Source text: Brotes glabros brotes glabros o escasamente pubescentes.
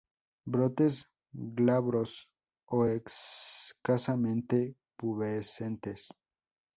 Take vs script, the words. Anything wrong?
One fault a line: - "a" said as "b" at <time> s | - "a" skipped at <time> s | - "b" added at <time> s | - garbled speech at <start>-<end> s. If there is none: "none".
- "brotes glabros" skipped at 2.3 s